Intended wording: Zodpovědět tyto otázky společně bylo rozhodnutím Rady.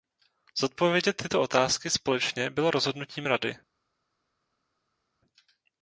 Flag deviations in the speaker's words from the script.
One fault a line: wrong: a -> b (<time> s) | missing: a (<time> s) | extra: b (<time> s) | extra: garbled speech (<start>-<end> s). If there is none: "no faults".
no faults